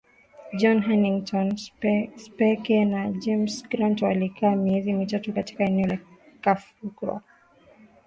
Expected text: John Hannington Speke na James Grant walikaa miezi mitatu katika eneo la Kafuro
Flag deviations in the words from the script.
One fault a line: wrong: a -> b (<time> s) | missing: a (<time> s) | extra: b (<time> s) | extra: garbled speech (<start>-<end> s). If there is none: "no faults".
no faults